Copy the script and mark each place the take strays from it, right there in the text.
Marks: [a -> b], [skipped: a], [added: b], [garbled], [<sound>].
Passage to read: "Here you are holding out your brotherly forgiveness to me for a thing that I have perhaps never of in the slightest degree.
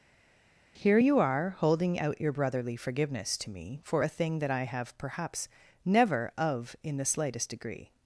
"Here you are holding out your brotherly forgiveness to me for a thing that I have perhaps never of in the slightest degree.